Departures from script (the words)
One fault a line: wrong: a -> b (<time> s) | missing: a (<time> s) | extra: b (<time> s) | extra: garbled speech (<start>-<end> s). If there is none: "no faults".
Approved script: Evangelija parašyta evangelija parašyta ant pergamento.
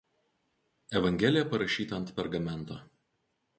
missing: evangelija parašyta (2.0 s)